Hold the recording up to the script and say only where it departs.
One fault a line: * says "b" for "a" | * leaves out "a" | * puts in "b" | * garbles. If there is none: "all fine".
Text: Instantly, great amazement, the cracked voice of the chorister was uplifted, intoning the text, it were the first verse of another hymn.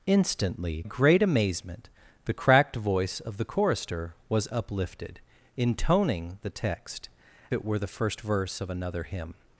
all fine